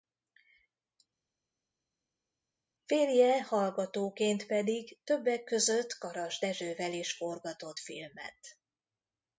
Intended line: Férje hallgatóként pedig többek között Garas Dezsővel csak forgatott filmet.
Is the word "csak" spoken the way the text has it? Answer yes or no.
no